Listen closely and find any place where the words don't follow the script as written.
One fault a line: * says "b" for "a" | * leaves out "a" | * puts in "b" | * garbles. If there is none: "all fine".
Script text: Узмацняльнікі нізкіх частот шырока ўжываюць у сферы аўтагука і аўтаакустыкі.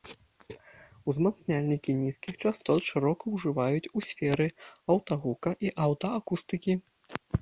all fine